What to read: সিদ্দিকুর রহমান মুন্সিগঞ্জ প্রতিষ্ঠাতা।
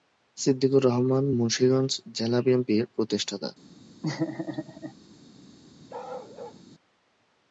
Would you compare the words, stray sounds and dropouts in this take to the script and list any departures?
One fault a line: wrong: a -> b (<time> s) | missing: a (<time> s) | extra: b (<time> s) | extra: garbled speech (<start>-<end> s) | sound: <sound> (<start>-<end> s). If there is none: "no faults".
extra: জেলা বিএনপির (2.2 s)
sound: laugh (4.0-4.9 s)
sound: bark (5.9-6.6 s)